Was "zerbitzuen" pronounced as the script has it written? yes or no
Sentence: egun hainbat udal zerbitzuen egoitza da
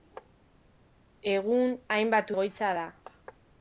no